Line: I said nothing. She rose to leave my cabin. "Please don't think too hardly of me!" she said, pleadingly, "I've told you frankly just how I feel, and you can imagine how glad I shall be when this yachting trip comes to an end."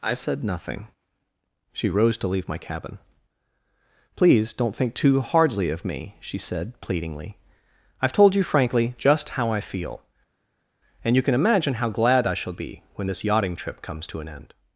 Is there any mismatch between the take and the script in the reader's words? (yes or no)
no